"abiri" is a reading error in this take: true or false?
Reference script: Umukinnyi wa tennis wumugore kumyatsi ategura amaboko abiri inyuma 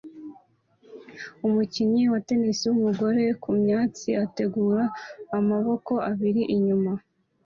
false